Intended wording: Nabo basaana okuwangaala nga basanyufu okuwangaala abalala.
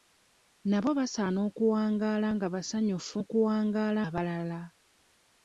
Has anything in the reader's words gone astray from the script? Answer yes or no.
no